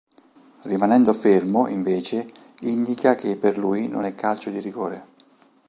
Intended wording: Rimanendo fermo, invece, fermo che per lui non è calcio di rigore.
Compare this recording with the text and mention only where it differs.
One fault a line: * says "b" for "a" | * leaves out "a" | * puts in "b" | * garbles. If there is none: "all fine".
* says "indica" for "fermo"